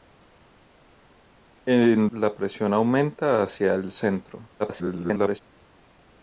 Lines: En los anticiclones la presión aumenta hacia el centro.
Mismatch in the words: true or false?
true